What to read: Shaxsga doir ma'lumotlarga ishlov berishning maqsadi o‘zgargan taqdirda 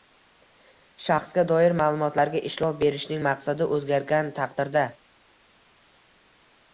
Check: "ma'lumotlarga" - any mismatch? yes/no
no